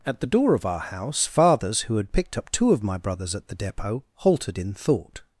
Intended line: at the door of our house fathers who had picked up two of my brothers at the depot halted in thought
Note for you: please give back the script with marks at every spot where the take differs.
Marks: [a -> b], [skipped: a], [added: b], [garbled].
at the door of our house fathers who had picked up two of my brothers at the depot halted in thought